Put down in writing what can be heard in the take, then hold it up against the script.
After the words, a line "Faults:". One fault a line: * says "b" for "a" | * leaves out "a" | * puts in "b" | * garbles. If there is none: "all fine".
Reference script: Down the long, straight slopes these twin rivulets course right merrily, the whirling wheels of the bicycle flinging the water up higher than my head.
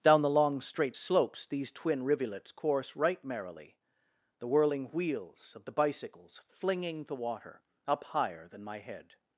Down the long, straight slopes these twin rivulets course right merrily, the whirling wheels of the bicycles flinging the water up higher than my head.
Faults:
* says "bicycles" for "bicycle"